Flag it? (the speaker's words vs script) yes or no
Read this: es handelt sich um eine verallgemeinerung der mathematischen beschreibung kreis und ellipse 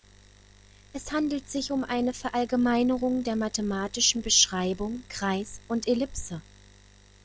no